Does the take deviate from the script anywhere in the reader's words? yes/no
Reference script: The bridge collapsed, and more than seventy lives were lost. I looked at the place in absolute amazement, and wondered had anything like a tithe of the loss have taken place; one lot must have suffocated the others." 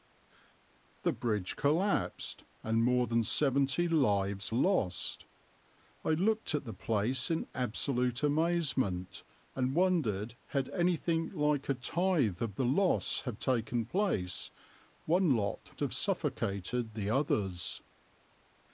yes